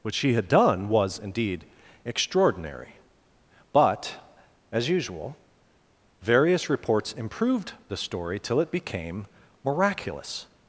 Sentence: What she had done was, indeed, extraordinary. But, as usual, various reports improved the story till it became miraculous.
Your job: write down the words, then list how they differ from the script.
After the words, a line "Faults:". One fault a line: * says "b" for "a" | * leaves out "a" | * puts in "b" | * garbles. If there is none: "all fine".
What she had done was, indeed, extraordinary. But, as usual, various reports improved the story till it became miraculous.
Faults:
all fine